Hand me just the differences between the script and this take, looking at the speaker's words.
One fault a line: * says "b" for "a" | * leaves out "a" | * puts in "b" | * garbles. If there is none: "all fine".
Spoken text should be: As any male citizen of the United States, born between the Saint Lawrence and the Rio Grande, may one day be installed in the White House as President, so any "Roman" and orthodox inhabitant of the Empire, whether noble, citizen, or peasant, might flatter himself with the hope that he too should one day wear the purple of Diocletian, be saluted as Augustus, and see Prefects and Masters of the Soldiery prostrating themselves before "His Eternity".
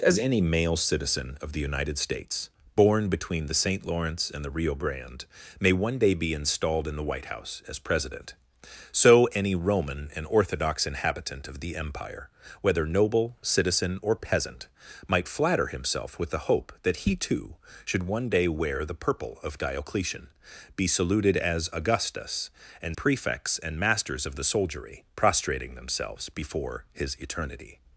* leaves out "see"